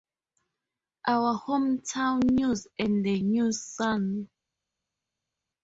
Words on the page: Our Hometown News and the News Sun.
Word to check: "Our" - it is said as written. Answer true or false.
true